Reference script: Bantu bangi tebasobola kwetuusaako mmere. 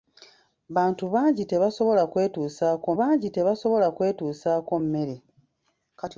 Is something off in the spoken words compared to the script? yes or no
yes